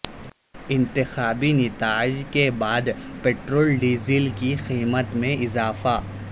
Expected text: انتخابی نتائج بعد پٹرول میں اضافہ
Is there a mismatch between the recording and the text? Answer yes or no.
yes